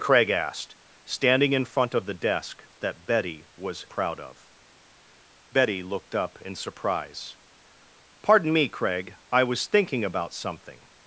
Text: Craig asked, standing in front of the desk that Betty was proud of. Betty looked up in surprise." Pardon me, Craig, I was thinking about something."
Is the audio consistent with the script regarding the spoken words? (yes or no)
yes